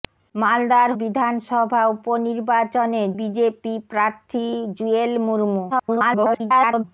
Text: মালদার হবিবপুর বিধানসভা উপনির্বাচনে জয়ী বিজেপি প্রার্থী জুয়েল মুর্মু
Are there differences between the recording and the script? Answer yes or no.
yes